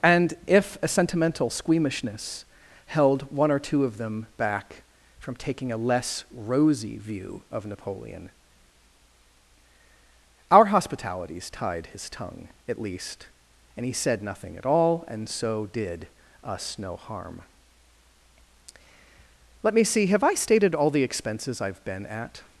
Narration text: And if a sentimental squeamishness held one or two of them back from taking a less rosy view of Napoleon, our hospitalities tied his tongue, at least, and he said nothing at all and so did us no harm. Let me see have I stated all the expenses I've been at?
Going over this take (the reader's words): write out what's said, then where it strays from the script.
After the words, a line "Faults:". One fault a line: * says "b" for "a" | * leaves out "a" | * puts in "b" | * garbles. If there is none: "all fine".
And if a sentimental squeamishness held one or two of them back from taking a less rosy view of Napoleon, our hospitalities tied his tongue, at least, and he said nothing at all and so did us no harm. Let me see have I stated all the expenses I've been at?
Faults:
all fine